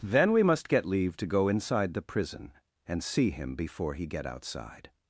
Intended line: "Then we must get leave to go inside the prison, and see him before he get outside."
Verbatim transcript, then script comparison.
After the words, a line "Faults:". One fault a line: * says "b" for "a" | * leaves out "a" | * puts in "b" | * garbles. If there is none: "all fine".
"Then we must get leave to go inside the prison, and see him before he get outside."
Faults:
all fine